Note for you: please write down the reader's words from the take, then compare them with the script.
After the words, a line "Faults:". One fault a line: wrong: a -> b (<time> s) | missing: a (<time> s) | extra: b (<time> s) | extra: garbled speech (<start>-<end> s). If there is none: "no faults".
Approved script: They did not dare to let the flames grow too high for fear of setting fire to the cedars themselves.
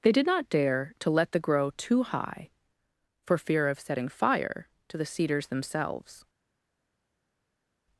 They did not dare to let the grow too high for fear of setting fire to the cedars themselves.
Faults:
missing: flames (1.4 s)